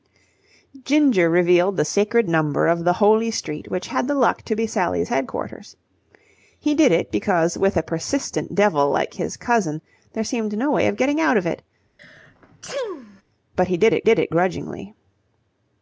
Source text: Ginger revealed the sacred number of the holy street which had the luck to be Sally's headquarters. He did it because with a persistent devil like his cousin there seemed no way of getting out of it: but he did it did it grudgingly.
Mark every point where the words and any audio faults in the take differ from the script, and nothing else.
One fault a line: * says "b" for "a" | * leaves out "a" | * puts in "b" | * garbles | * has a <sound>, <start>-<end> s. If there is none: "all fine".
* has a sneeze, 12.0-13.2 s